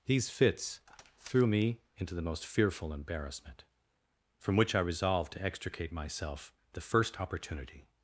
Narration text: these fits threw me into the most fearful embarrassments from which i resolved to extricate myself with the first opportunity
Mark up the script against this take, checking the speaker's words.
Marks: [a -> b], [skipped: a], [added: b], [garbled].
these fits threw me into the most fearful [embarrassments -> embarrassment] from which i resolved to extricate myself [skipped: with] the first opportunity